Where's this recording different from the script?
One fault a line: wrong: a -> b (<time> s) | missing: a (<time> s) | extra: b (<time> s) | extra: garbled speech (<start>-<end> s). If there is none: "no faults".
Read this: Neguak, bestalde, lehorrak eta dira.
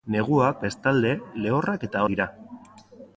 no faults